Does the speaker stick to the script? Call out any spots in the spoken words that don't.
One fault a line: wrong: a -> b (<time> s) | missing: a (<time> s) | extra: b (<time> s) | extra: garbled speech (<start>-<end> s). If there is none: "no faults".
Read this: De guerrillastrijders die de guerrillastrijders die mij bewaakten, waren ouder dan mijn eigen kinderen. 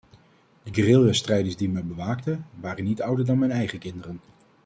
missing: de guerrillastrijders die (1.7 s)
extra: niet (2.8 s)